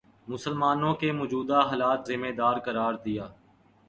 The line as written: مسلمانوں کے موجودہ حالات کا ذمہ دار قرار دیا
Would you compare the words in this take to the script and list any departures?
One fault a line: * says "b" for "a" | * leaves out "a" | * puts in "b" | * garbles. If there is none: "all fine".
* leaves out "کا"